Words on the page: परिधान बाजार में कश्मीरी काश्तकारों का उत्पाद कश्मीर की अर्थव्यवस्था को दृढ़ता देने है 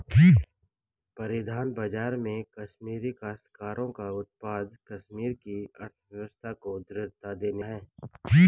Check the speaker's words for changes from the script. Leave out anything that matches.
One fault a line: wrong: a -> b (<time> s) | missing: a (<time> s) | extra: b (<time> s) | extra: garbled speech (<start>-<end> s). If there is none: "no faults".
no faults